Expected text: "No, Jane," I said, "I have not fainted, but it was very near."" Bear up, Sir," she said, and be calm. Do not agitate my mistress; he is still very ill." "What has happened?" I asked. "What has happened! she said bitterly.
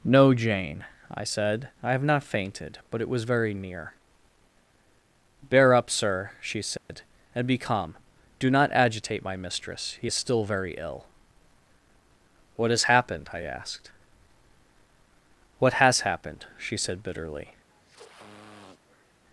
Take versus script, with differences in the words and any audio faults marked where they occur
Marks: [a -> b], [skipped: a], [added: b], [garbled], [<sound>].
"No, Jane," I said, "I have not fainted, but it was very near."" Bear up, Sir," she said, [dropout] and be calm. Do not agitate my mistress; he is still very ill." "What has happened?" I asked. "What has happened! she said bitterly. [sniff]